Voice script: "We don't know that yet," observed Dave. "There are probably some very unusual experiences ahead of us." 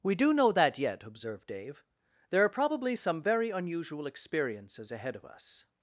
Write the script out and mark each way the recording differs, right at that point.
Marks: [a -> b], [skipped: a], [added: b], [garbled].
"We [don't -> do] know that yet," observed Dave. "There are probably some very unusual experiences ahead of us."